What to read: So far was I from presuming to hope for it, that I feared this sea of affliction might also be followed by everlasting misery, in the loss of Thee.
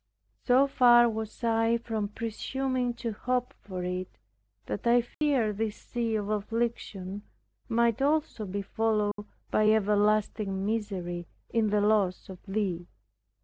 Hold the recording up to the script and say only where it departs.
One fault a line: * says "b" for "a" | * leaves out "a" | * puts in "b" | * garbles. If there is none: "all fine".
all fine